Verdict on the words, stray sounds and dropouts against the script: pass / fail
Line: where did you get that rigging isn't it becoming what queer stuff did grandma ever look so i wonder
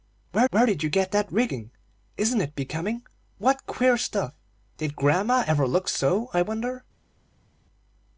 fail